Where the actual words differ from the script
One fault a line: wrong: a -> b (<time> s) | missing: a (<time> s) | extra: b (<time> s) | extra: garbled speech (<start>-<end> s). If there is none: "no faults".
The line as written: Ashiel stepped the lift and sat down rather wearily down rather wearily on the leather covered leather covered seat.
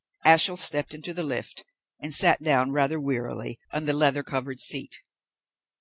extra: into (0.9 s)
missing: down rather wearily (3.6 s)
missing: leather covered (4.6 s)